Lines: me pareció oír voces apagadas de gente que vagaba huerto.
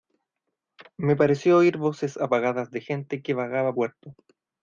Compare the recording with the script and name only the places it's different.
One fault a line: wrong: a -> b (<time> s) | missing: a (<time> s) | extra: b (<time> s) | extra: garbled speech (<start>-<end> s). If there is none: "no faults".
no faults